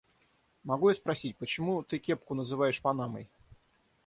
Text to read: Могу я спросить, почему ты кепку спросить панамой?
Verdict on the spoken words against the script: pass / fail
fail